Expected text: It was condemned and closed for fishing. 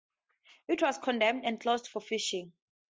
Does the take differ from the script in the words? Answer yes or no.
no